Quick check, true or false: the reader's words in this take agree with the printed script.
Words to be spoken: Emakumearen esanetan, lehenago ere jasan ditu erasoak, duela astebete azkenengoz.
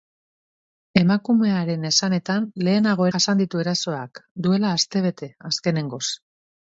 false